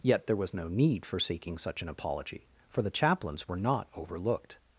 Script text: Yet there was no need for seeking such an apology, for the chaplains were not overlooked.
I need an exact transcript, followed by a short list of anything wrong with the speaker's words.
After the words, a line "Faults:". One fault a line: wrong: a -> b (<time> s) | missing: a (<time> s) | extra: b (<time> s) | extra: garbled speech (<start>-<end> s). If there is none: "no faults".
Yet there was no need for seeking such an apology, for the chaplains were not overlooked.
Faults:
no faults